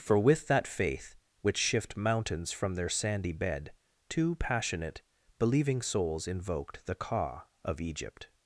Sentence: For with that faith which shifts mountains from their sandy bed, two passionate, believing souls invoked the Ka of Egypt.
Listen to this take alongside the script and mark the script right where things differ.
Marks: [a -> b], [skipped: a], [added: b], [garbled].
For with that faith which [shifts -> shift] mountains from their sandy bed, two passionate, believing souls invoked the Ka of Egypt.